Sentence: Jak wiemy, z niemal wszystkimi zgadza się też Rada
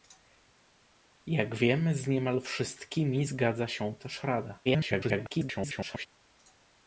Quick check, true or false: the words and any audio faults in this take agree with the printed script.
false